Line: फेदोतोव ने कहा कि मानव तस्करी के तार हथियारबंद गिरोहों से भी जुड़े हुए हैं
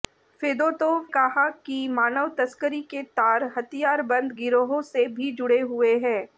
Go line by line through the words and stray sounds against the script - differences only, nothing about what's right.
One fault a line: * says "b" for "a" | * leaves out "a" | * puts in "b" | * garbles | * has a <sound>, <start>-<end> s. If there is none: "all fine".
* leaves out "ने"